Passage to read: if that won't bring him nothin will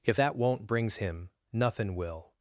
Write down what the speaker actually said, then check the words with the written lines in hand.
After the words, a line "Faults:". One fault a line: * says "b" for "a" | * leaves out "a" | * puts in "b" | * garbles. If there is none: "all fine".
if that won't brings him nothin will
Faults:
* says "brings" for "bring"